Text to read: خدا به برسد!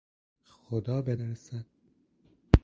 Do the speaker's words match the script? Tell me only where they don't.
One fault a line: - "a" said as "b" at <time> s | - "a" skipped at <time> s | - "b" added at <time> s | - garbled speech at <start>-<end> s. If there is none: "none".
none